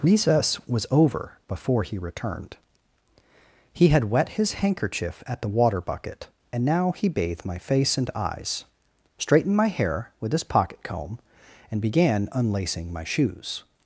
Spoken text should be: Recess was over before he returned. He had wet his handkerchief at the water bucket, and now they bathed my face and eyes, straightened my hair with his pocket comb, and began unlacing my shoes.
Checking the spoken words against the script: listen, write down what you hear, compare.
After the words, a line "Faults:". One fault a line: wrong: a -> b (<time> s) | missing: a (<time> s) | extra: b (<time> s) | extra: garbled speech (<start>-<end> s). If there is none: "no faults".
Recess was over before he returned. He had wet his handkerchief at the water bucket, and now he bathed my face and eyes, straightened my hair with his pocket comb, and began unlacing my shoes.
Faults:
wrong: they -> he (6.9 s)